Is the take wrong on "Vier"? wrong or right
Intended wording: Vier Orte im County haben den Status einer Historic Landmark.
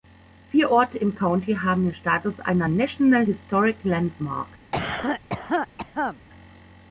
right